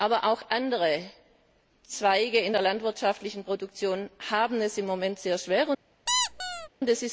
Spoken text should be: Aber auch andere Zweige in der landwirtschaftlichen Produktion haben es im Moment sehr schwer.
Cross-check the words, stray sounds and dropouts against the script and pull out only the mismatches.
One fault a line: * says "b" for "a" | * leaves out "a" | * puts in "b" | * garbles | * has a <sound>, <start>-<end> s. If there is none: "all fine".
* has a squeak, 6.1-6.7 s